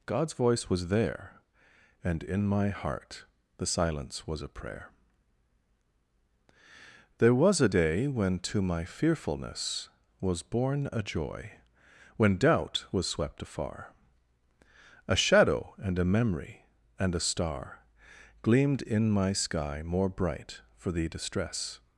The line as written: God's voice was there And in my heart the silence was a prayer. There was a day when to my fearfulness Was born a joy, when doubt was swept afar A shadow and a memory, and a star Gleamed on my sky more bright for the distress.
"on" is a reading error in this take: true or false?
true